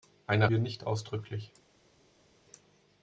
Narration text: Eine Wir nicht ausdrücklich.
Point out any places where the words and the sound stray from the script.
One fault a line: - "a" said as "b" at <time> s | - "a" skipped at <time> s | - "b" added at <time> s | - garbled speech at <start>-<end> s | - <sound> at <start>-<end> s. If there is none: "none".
none